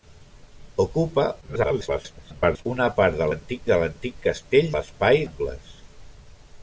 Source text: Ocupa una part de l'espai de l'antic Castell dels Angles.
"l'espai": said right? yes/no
no